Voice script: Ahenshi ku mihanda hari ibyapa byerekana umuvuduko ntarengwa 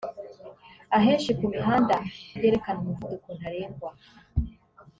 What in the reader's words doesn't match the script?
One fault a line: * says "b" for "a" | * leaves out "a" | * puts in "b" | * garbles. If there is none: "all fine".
* leaves out "hari ibyapa"